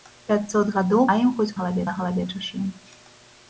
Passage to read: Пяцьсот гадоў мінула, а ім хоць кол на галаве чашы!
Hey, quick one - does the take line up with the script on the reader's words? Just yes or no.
no